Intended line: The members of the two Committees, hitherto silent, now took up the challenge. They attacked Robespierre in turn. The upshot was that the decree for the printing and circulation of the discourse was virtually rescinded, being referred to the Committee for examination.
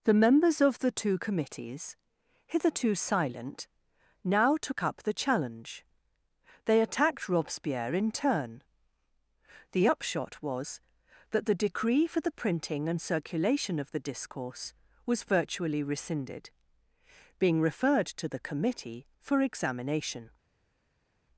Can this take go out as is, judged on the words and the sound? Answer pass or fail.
pass